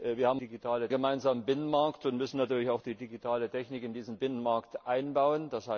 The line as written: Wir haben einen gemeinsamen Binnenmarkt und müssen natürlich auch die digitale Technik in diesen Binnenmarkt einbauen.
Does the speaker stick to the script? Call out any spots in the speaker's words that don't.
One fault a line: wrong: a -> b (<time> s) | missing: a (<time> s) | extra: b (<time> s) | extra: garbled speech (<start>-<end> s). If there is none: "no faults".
wrong: einen -> digitale (0.4 s)